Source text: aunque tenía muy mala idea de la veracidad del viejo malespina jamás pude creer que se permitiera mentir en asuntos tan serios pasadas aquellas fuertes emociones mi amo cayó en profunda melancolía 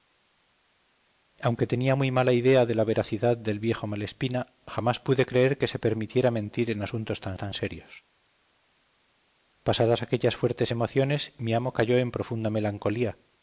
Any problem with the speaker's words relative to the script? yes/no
yes